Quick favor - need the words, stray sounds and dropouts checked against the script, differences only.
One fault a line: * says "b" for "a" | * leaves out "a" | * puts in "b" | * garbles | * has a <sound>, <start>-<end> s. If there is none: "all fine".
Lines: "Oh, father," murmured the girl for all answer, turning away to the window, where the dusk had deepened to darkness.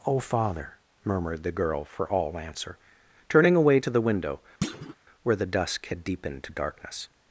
* has a thud, 4.6-5.0 s